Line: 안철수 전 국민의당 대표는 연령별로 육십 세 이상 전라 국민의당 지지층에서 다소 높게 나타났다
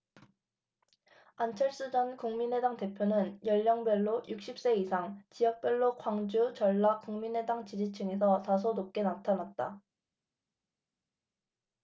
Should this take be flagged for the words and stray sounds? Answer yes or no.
yes